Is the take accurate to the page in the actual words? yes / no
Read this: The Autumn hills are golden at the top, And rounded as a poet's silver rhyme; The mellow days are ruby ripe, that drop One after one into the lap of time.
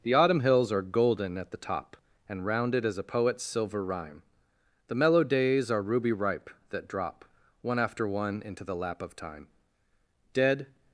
no